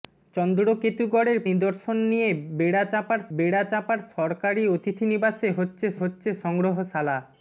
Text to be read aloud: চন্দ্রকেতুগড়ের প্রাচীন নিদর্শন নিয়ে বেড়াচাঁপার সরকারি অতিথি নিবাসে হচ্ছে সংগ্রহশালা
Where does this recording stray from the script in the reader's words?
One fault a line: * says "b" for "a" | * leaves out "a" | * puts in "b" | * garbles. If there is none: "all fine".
* leaves out "প্রাচীন"
* puts in "বেড়াচাঁপার"
* puts in "হচ্ছে"